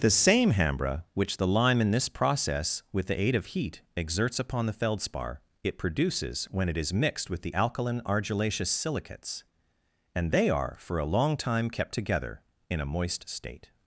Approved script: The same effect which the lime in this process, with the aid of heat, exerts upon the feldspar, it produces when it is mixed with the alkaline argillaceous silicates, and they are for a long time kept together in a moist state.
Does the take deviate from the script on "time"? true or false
false